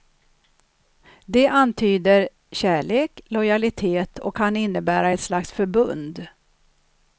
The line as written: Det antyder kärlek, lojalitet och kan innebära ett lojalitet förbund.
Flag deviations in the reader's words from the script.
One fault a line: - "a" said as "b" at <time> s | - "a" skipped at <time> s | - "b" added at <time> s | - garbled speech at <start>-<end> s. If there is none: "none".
- "lojalitet" said as "slags" at 5.2 s